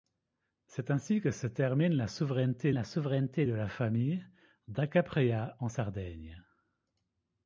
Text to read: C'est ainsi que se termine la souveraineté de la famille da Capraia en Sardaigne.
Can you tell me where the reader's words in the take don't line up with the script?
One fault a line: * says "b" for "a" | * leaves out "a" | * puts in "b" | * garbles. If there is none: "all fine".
* puts in "la souveraineté"